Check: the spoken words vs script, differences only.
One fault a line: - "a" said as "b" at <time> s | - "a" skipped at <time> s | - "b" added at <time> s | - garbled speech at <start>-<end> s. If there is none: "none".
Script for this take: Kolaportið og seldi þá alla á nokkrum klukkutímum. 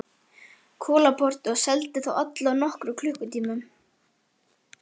none